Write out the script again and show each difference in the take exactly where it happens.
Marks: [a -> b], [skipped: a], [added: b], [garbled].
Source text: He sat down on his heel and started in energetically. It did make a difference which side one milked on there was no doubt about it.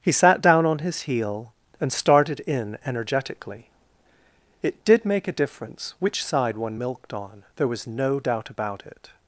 He sat down on his heel and started in energetically. It did make a difference which side one milked on there was no doubt about it.